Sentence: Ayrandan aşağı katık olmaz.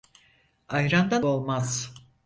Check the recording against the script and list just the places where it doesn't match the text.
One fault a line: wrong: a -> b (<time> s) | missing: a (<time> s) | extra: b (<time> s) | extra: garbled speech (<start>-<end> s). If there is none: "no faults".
missing: aşağı katık (1.2 s)